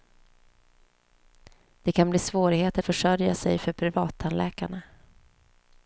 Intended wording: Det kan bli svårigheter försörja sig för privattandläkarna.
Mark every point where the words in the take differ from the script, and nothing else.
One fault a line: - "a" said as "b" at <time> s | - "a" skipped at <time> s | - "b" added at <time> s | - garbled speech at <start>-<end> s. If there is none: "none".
none